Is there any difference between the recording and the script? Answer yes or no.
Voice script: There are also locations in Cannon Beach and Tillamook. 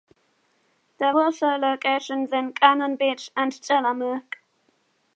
yes